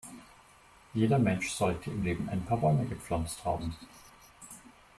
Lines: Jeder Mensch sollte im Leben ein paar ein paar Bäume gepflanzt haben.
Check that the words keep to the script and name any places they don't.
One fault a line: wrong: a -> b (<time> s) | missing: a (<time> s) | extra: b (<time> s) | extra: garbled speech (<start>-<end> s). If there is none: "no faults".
missing: ein paar (2.6 s)